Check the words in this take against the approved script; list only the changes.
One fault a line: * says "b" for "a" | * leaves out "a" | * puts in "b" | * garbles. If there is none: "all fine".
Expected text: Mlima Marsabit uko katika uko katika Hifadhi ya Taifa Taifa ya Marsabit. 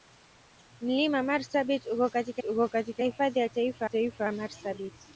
all fine